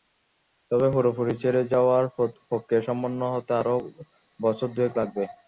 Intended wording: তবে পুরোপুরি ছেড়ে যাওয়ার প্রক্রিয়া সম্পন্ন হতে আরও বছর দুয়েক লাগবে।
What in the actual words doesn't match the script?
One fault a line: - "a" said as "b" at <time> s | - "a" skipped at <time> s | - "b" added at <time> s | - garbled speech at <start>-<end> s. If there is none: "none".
none